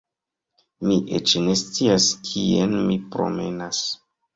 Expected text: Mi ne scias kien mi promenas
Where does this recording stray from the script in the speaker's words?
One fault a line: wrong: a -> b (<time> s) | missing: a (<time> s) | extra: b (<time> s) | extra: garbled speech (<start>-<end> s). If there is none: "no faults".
extra: eĉ (1.2 s)